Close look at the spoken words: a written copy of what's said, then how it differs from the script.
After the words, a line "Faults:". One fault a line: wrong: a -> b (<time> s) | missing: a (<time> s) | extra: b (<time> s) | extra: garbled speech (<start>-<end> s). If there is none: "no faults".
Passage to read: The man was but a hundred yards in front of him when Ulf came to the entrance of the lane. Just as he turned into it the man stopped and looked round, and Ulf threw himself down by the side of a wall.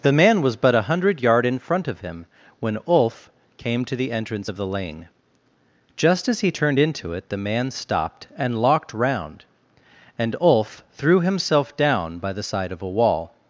The man was but a hundred yard in front of him when Ulf came to the entrance of the lane. Just as he turned into it the man stopped and locked round, and Ulf threw himself down by the side of a wall.
Faults:
wrong: yards -> yard (1.2 s)
wrong: looked -> locked (8.6 s)